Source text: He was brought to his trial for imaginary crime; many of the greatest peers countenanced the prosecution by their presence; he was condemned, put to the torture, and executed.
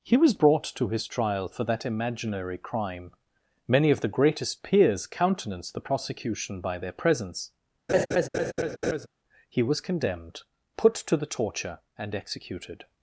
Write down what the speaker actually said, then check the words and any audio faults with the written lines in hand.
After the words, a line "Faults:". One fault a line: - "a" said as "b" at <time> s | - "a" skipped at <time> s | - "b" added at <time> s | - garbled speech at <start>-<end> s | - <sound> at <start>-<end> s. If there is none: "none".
He was brought to his trial for that imaginary crime; many of the greatest peers countenanced the prosecution by their presence; he was condemned, put to the torture, and executed.
Faults:
- "that" added at 1.6 s
- laugh at 7.9-9.1 s